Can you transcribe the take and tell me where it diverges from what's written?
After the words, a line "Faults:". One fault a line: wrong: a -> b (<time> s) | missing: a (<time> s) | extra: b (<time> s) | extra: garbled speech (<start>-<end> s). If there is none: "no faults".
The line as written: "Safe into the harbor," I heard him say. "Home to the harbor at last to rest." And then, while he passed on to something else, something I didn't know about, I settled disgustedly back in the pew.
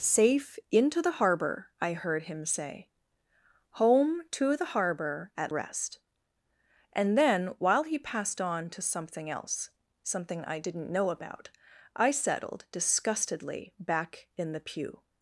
"Safe into the harbor," I heard him say. "Home to the harbor at rest." And then, while he passed on to something else, something I didn't know about, I settled disgustedly back in the pew.
Faults:
missing: last to (5.5 s)